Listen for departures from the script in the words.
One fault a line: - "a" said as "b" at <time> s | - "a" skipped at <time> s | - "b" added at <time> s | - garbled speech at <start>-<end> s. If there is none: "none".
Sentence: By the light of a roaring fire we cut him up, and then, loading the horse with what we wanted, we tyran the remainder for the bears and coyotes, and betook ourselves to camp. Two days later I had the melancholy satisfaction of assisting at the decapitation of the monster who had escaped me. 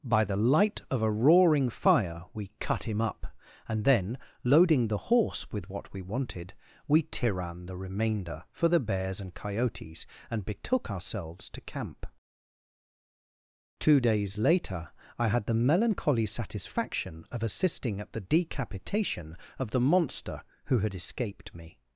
none